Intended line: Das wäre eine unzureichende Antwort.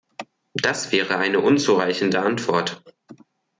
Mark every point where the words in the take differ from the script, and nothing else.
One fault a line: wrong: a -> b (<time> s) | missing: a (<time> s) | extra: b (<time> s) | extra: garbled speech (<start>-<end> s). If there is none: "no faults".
no faults